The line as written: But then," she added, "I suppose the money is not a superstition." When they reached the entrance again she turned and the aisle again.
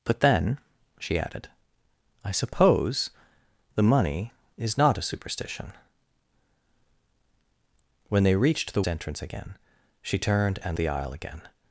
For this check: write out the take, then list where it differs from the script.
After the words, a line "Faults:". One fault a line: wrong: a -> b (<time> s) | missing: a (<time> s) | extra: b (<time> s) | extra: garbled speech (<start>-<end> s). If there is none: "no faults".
But then," she added, "I suppose the money is not a superstition." When they reached the entrance again she turned and the aisle again.
Faults:
no faults